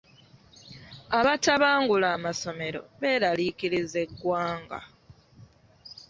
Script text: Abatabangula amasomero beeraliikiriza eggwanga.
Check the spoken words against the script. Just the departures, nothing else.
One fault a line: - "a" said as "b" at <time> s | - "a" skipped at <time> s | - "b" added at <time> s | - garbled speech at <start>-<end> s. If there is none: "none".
none